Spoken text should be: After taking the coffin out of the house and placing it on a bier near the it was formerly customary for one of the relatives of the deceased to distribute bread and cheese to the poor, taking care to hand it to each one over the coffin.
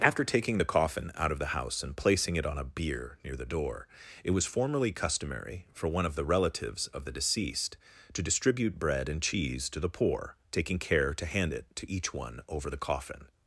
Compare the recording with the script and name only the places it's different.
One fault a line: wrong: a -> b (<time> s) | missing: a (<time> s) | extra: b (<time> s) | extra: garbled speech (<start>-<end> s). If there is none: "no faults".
extra: door (3.4 s)